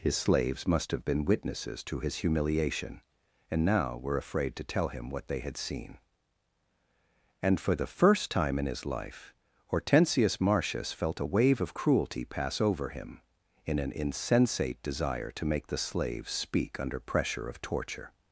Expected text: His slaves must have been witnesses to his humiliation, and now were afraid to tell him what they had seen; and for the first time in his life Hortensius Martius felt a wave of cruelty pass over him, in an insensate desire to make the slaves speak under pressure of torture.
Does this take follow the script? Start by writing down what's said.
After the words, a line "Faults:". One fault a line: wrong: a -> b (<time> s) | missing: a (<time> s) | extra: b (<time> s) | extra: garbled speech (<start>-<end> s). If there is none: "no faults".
His slaves must have been witnesses to his humiliation, and now were afraid to tell him what they had seen; and for the first time in his life Hortensius Martius felt a wave of cruelty pass over him, in an insensate desire to make the slaves speak under pressure of torture.
Faults:
no faults